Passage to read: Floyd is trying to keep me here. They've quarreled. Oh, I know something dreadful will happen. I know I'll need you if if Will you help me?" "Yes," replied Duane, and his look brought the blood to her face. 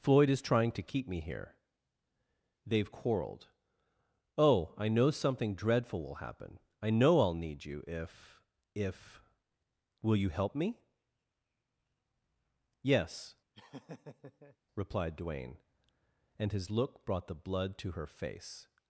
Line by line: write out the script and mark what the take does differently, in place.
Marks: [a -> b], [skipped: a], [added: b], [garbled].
Floyd is trying to keep me here. They've quarreled. Oh, I know something dreadful will happen. I know I'll need you if if Will you help me?" "Yes," replied Duane, and his look brought the blood to her face.